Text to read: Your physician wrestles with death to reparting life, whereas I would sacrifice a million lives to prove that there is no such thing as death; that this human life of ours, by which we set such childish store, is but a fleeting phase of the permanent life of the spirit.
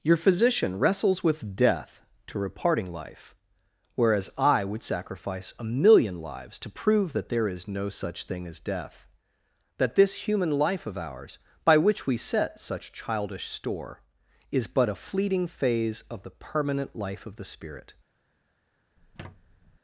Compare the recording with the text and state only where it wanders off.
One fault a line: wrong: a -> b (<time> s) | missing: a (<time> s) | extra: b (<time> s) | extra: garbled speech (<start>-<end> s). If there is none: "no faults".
no faults